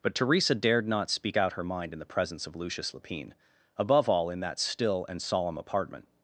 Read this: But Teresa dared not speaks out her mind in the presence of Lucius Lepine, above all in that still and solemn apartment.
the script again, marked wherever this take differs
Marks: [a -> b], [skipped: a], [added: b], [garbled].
But Teresa dared not [speaks -> speak] out her mind in the presence of Lucius Lepine, above all in that still and solemn apartment.